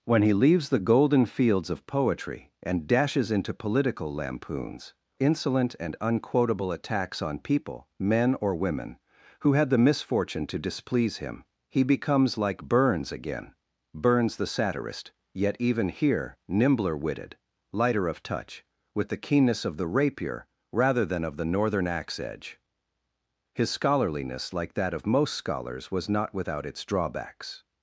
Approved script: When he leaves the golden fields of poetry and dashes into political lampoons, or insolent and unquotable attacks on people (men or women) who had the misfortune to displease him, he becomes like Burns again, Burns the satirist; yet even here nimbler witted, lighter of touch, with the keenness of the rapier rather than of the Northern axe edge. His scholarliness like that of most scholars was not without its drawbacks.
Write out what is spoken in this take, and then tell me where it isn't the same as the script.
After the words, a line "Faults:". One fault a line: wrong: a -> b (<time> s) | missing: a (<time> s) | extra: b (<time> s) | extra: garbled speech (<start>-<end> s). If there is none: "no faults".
When he leaves the golden fields of poetry and dashes into political lampoons, insolent and unquotable attacks on people (men or women) who had the misfortune to displease him, he becomes like Burns again, Burns the satirist; yet even here nimbler witted, lighter of touch, with the keenness of the rapier rather than of the Northern axe edge. His scholarliness like that of most scholars was not without its drawbacks.
Faults:
missing: or (5.0 s)